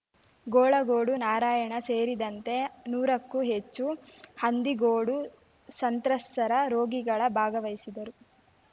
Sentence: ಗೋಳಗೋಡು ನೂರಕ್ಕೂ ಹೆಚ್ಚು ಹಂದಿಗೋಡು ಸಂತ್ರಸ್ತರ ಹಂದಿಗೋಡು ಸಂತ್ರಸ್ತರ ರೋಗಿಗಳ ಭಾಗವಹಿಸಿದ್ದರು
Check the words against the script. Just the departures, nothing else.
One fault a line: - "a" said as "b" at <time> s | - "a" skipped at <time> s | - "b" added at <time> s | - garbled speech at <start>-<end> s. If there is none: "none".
- "ನಾರಾಯಣ ಸೇರಿದಂತೆ" added at 1.2 s
- "ಹಂದಿಗೋಡು ಸಂತ್ರಸ್ತರ" skipped at 6.5 s